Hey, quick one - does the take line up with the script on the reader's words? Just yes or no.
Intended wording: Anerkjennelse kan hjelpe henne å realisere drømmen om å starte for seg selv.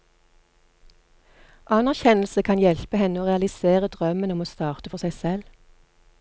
yes